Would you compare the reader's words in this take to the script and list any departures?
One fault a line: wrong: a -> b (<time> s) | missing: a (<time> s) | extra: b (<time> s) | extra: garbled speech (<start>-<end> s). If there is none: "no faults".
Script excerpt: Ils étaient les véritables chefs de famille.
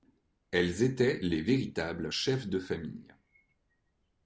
wrong: Ils -> Elles (0.5 s)